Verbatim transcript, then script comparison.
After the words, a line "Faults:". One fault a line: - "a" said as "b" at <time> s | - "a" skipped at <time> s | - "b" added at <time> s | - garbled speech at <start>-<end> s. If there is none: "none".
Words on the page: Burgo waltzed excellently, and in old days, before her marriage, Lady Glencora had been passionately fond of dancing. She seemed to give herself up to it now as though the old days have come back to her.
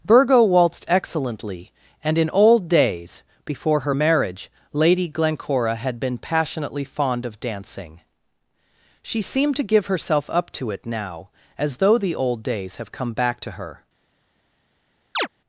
Burgo waltzed excellently, and in old days, before her marriage, Lady Glencora had been passionately fond of dancing. She seemed to give herself up to it now as though the old days have come back to her.
Faults:
none